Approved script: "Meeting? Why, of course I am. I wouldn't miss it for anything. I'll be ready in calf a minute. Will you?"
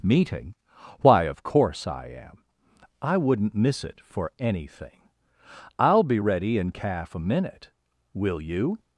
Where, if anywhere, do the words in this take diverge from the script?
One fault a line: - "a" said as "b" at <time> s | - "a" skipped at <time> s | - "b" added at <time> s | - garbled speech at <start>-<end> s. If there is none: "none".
none